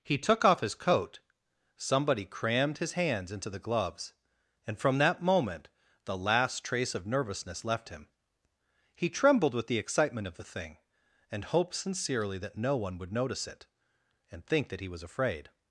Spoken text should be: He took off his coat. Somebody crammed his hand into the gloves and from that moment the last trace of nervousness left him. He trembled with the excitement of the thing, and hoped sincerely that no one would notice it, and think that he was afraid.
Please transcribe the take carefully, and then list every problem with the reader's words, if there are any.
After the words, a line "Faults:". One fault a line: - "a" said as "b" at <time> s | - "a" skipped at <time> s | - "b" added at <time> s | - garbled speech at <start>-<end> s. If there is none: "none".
He took off his coat. Somebody crammed his hands into the gloves and from that moment the last trace of nervousness left him. He trembled with the excitement of the thing, and hoped sincerely that no one would notice it, and think that he was afraid.
Faults:
- "hand" said as "hands" at 2.9 s